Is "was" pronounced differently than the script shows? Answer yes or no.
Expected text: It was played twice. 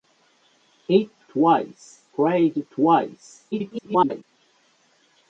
yes